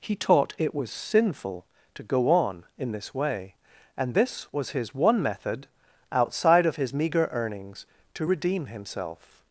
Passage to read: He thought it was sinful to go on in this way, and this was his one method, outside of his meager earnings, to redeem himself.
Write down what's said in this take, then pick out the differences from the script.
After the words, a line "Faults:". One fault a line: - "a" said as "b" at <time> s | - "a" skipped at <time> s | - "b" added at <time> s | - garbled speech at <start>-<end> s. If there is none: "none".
He taught it was sinful to go on in this way, and this was his one method, outside of his meager earnings, to redeem himself.
Faults:
- "thought" said as "taught" at 0.1 s